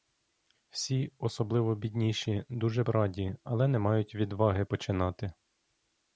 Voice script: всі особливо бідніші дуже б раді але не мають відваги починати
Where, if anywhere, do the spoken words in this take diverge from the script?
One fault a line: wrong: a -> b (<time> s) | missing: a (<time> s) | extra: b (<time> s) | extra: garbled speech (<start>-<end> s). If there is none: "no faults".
missing: б (2.8 s)